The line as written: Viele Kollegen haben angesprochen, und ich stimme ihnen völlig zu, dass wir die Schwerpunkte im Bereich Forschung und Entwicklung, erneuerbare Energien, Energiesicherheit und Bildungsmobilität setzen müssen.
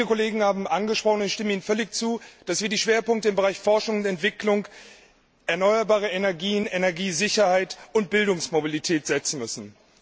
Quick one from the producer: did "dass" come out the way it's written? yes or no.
yes